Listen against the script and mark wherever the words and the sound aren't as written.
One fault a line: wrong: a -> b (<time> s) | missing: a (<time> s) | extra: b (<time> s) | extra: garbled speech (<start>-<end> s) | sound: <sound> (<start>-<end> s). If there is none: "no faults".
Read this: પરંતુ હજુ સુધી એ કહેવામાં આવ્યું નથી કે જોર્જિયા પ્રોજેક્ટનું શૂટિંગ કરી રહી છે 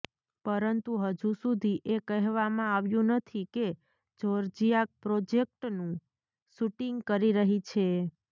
no faults